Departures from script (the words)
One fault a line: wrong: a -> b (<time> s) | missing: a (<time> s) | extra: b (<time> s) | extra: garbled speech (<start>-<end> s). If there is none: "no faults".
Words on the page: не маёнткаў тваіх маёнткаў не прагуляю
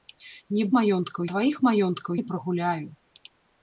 no faults